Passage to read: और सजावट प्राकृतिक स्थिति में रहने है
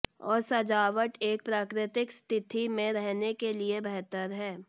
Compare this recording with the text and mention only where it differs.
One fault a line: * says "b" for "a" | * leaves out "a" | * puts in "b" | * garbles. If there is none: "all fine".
* puts in "एक"
* puts in "के लिए बेहतर"